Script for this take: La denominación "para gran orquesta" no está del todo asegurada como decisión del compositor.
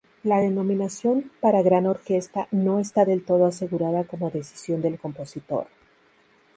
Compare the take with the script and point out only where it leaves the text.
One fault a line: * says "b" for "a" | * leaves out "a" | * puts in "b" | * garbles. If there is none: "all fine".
all fine